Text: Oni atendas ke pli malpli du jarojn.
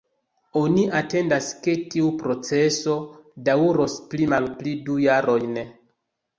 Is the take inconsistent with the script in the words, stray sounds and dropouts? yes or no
yes